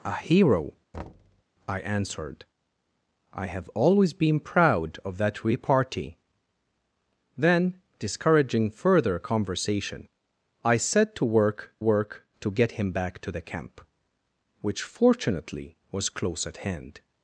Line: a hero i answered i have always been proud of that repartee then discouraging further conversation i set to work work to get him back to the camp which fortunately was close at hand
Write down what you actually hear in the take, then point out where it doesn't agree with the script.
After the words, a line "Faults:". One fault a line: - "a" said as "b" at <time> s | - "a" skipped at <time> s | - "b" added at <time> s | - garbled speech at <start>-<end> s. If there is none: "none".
a hero i answered i have always been proud of that repartee then discouraging further conversation i set to work work to get him back to the camp which fortunately was close at hand
Faults:
none